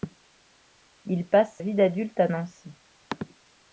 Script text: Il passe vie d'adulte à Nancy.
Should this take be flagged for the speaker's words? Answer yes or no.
no